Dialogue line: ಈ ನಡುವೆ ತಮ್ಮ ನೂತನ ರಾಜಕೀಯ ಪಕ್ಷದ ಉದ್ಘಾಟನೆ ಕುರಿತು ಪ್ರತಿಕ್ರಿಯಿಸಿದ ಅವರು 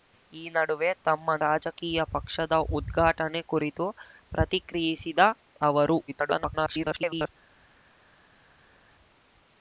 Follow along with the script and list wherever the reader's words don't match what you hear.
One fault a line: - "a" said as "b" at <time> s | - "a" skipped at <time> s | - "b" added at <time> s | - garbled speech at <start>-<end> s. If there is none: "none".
- "ನೂತನ" skipped at 1.4 s
- garbled speech at 6.1-7.3 s